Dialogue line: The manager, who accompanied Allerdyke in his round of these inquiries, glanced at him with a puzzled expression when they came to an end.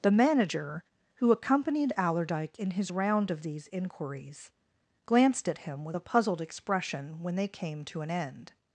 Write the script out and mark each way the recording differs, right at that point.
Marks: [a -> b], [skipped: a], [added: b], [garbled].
The manager, who accompanied Allerdyke in his round of these inquiries, glanced at him with a puzzled expression when they came to an end.